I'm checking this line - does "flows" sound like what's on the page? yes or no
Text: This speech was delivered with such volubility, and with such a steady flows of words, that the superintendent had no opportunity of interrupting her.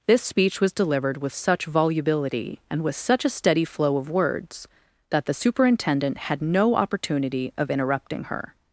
no